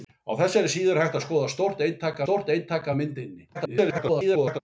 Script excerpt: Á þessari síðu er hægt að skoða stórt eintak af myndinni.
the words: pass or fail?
fail